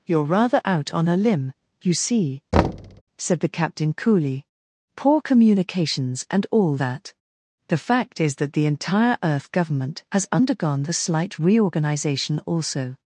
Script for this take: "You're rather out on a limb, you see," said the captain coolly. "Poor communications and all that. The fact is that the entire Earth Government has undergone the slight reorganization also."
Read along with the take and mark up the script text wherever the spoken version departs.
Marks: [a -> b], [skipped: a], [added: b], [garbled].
"You're rather out on a limb, you see," said the captain coolly. "Poor communications and all that. The fact is that the entire Earth Government has undergone the slight reorganization also."